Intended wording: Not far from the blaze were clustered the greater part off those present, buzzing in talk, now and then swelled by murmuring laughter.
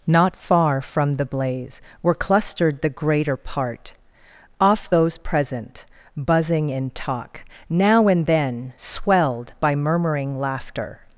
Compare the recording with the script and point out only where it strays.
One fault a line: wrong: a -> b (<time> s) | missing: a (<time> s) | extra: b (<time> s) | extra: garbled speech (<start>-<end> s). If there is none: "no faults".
no faults